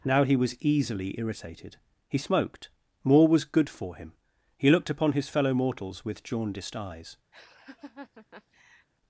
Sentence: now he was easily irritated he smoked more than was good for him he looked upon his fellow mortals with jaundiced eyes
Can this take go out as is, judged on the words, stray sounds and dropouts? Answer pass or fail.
fail